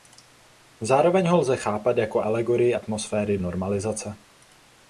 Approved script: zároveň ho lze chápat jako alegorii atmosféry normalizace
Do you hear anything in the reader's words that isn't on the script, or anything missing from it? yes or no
no